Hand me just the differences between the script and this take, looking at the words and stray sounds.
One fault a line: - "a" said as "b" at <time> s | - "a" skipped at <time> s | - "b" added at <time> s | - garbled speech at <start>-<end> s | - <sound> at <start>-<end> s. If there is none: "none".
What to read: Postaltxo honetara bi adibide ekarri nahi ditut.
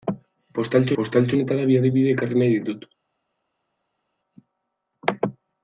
- "postaltxo" added at 1.0 s